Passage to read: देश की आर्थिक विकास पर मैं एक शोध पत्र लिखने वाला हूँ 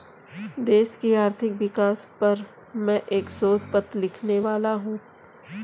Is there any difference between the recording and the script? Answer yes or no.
no